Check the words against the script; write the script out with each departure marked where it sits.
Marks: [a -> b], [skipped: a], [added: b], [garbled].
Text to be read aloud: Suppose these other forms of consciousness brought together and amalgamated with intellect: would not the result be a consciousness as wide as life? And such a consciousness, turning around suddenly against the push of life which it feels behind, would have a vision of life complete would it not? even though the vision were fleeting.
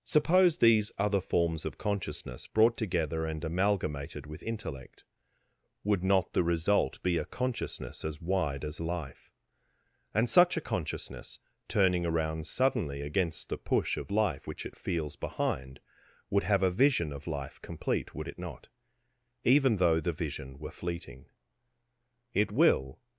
Suppose these other forms of consciousness brought together and amalgamated with intellect: would not the result be a consciousness as wide as life? And such a consciousness, turning around suddenly against the push of life which it feels behind, would have a vision of life complete would it not? even though the vision were fleeting. [added: It will]